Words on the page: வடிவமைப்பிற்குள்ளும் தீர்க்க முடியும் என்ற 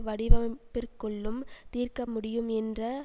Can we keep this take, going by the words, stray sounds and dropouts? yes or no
yes